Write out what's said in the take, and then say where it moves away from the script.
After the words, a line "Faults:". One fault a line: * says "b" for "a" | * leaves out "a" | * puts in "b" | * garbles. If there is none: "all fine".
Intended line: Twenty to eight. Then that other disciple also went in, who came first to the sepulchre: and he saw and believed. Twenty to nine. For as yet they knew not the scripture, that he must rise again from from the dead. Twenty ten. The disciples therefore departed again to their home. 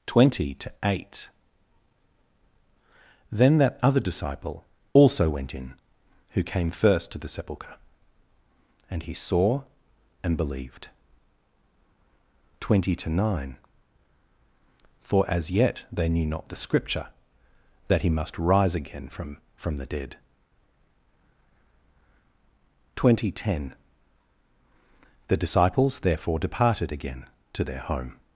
Twenty to eight. Then that other disciple also went in, who came first to the sepulchre: and he saw and believed. Twenty to nine. For as yet they knew not the scripture, that he must rise again from from the dead. Twenty ten. The disciples therefore departed again to their home.
Faults:
all fine